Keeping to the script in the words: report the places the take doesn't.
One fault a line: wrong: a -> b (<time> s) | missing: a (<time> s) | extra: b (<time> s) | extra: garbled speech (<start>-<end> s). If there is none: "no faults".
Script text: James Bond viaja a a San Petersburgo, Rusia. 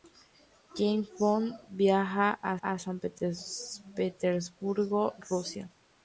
no faults